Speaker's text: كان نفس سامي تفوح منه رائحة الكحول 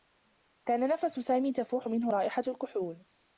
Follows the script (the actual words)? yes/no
yes